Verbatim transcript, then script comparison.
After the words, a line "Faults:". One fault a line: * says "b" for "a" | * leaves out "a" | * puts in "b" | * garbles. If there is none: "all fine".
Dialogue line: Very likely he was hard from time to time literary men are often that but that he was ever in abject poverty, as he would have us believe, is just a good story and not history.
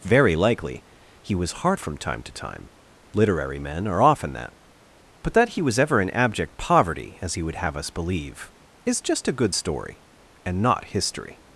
Very likely he was hard from time to time literary men are often that but that he was ever in abject poverty, as he would have us believe, is just a good story and not history.
Faults:
all fine